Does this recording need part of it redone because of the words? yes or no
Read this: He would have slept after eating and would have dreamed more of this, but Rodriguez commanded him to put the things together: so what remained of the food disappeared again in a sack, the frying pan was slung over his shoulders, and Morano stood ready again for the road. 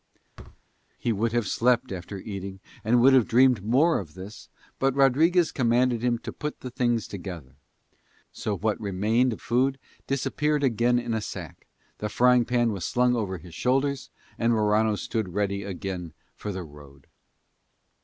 yes